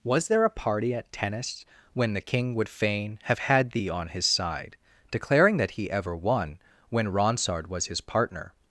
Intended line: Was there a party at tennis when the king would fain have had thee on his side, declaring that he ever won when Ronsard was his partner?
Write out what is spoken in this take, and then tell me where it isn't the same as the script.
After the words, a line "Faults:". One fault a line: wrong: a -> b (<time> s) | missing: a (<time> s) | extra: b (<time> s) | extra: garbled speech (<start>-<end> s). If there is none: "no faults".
Was there a party at tennis when the king would fain have had thee on his side, declaring that he ever won when Ronsard was his partner?
Faults:
no faults